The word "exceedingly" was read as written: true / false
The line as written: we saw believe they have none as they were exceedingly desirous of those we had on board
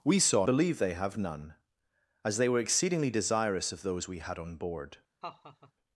true